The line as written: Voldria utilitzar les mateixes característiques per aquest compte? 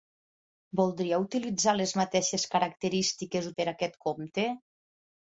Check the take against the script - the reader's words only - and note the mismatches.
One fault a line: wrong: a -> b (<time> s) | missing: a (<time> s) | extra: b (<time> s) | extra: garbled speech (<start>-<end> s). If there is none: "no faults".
no faults